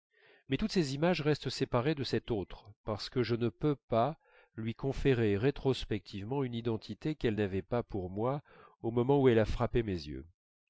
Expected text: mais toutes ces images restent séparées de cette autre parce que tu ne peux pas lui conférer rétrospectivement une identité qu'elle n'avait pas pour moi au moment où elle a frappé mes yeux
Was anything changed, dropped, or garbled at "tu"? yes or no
yes